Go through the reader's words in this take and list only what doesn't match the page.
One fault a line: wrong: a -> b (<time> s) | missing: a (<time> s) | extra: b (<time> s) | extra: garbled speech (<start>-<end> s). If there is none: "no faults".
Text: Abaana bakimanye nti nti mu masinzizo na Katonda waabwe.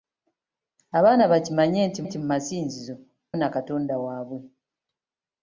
no faults